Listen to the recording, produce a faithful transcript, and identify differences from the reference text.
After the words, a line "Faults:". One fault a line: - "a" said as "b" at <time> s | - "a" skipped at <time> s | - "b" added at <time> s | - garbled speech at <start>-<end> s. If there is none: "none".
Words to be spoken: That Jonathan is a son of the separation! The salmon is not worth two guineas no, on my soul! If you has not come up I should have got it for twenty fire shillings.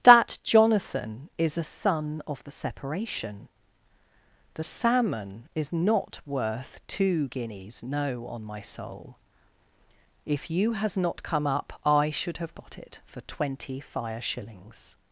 That Jonathan is a son of the separation! The salmon is not worth two guineas no, on my soul! If you has not come up I should have got it for twenty fire shillings.
Faults:
none